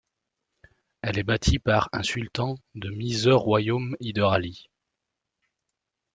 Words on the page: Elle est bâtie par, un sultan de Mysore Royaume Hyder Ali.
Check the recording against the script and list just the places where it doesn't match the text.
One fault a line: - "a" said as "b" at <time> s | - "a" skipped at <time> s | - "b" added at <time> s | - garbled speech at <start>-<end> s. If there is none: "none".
none